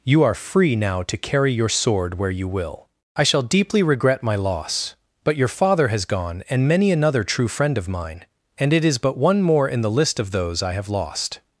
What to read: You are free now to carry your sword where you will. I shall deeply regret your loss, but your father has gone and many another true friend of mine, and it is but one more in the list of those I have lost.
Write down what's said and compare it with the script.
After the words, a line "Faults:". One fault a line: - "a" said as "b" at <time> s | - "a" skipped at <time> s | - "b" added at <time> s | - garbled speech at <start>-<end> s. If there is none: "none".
You are free now to carry your sword where you will. I shall deeply regret my loss, but your father has gone and many another true friend of mine, and it is but one more in the list of those I have lost.
Faults:
- "your" said as "my" at 4.2 s